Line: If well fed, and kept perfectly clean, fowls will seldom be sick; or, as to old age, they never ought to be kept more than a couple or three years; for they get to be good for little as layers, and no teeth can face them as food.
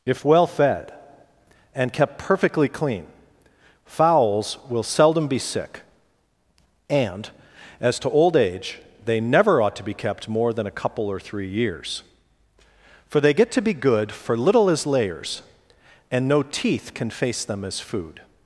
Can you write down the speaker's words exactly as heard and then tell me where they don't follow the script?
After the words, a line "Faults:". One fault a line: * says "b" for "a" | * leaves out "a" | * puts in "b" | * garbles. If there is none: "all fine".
If well fed, and kept perfectly clean, fowls will seldom be sick; and, as to old age, they never ought to be kept more than a couple or three years; for they get to be good for little as layers, and no teeth can face them as food.
Faults:
* says "and" for "or"